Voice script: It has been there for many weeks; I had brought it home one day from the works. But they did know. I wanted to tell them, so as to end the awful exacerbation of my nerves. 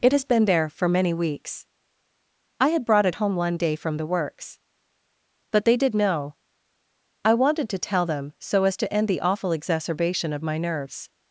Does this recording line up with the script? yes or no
yes